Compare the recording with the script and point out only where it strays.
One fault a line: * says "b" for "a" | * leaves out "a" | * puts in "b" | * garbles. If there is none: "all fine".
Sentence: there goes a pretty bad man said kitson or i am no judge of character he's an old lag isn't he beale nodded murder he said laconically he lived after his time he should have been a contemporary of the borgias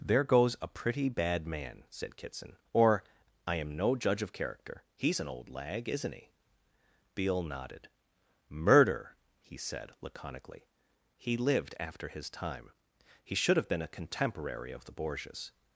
all fine